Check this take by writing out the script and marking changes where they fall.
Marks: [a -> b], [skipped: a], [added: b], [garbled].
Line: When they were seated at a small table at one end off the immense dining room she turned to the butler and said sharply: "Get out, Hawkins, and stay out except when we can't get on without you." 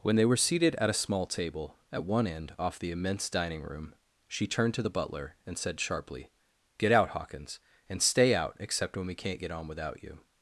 When they were seated at a small table at one end off the immense dining room she turned to the butler and said sharply: "Get out, Hawkins, and stay out except when we can't get on without you."